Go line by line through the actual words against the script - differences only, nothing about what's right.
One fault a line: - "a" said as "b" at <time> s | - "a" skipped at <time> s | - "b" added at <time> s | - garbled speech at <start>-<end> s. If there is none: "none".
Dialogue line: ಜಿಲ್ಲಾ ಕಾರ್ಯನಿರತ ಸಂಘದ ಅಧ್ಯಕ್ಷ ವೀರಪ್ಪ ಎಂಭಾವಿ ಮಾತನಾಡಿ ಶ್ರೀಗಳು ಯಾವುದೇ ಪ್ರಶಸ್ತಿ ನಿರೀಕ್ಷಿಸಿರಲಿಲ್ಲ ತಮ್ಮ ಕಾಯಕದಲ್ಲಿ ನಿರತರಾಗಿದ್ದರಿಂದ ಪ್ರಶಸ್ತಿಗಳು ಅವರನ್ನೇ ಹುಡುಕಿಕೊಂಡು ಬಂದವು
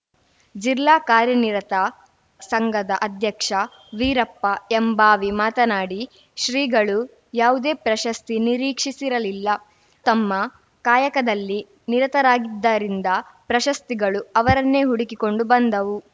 none